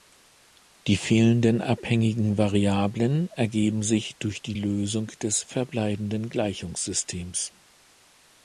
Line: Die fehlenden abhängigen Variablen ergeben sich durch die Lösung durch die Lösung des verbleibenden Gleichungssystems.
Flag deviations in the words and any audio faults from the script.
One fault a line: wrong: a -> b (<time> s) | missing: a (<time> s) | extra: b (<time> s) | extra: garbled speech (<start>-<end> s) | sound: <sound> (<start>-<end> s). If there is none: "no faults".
missing: durch die Lösung (5.1 s)